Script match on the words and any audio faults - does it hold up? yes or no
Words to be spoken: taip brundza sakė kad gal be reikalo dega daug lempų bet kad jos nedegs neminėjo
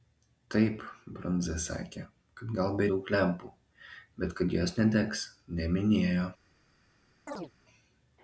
no